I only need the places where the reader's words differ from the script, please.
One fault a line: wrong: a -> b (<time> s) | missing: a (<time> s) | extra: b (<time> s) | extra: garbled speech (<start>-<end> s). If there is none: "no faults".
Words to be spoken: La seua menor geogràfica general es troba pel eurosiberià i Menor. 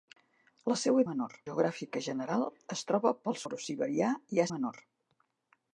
no faults